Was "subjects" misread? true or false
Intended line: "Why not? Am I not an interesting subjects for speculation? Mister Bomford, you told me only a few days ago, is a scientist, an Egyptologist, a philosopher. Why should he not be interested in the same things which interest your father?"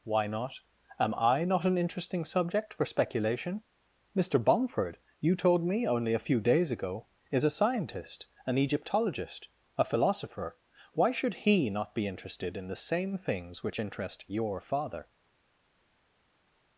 true